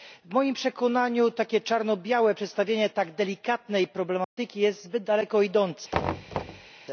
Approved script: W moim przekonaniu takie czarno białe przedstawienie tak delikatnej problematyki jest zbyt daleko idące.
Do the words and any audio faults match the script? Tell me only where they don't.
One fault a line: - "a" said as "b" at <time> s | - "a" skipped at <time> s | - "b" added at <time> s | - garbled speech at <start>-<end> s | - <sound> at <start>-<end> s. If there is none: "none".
- dropout at 4.2-4.4 s
- thud at 5.9-6.7 s